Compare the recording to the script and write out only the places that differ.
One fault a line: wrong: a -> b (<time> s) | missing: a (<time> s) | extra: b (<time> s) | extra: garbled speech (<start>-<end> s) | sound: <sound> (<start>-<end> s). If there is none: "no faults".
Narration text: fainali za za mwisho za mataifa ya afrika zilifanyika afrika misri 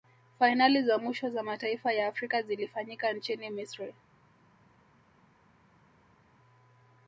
missing: za (1.0 s)
wrong: afrika -> nchini (3.1 s)